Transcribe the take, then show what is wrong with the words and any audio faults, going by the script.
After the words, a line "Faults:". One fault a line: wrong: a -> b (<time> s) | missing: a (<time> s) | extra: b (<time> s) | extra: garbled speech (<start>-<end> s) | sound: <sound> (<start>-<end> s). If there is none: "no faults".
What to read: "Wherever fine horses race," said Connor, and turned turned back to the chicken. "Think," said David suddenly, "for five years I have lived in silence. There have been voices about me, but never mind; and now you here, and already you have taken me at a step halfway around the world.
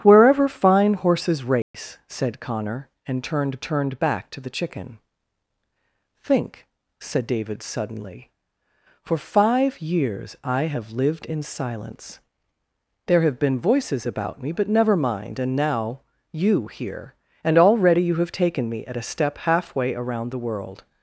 "Wherever fine horses race," said Connor, and turned turned back to the chicken. "Think," said David suddenly, "for five years I have lived in silence. There have been voices about me, but never mind; and now you here, and already you have taken me at a step halfway around the world.
Faults:
sound: dropout (1.6-1.7 s)